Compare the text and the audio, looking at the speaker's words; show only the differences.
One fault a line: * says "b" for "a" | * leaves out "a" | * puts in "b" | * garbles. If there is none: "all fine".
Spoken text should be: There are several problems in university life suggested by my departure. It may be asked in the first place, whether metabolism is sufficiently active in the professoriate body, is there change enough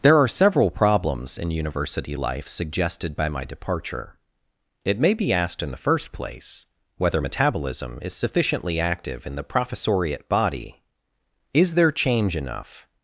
all fine